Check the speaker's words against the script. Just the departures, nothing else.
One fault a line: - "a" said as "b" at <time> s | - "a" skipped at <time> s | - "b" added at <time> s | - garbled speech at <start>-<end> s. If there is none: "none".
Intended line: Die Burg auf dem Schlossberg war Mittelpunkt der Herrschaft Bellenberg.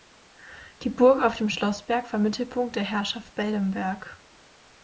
none